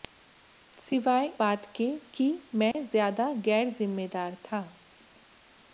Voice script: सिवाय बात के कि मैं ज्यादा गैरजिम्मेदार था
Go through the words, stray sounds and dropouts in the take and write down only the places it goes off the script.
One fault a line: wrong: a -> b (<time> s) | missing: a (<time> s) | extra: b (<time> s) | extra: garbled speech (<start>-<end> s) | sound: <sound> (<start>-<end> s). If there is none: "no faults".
sound: dropout (2.7-2.7 s)